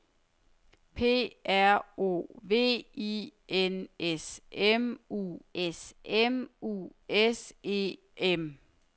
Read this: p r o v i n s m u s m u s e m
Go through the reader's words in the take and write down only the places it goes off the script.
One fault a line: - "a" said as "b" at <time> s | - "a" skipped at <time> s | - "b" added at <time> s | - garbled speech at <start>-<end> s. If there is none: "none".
none